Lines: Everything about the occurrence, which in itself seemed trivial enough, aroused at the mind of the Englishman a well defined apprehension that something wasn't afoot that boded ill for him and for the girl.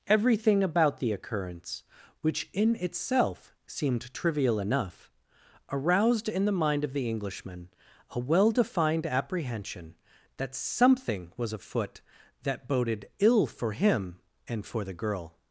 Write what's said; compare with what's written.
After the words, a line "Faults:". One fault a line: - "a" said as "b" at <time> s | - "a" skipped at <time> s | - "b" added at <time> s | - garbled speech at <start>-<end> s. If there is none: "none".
Everything about the occurrence, which in itself seemed trivial enough, aroused in the mind of the Englishman a well defined apprehension that something was afoot that boded ill for him and for the girl.
Faults:
- "at" said as "in" at 6.3 s
- "wasn't" said as "was" at 11.4 s